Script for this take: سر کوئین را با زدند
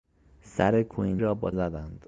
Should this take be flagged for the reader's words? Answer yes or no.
no